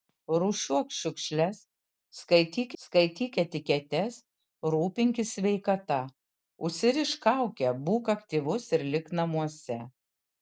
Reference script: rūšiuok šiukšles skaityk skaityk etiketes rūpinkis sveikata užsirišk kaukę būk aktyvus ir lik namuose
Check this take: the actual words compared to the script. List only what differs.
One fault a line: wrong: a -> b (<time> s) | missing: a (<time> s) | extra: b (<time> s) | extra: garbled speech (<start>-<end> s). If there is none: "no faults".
no faults